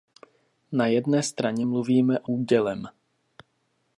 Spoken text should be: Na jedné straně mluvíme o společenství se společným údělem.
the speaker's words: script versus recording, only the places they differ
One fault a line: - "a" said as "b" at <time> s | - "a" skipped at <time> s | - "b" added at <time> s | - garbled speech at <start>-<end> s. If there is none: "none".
- "společenství se společným" skipped at 2.3 s